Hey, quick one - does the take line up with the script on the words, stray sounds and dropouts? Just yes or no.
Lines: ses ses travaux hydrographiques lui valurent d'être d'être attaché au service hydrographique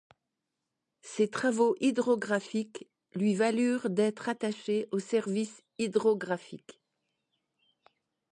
no